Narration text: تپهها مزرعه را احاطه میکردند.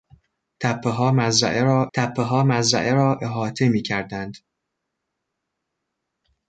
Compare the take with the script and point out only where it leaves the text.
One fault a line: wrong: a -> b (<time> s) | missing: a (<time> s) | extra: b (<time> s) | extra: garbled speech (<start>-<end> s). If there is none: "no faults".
extra: تپهها مزرعه را (1.9 s)